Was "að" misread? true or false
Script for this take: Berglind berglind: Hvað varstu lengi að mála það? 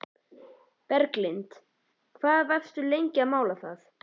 false